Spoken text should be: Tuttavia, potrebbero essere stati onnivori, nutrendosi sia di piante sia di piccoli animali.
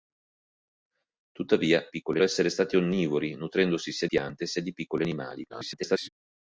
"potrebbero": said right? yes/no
no